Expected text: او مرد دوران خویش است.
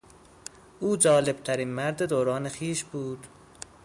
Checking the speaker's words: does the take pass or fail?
fail